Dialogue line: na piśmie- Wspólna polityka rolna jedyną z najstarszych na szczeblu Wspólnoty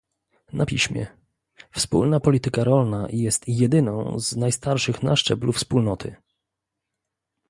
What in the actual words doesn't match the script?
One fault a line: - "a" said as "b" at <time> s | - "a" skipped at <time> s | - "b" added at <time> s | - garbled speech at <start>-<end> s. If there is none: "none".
- "jest" added at 3.1 s